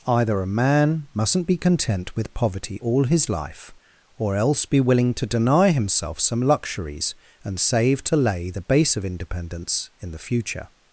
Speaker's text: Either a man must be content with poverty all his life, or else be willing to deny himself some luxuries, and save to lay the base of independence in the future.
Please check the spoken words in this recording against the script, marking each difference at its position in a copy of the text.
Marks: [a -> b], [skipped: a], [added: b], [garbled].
Either a man [must -> mustn't] be content with poverty all his life, or else be willing to deny himself some luxuries, and save to lay the base of independence in the future.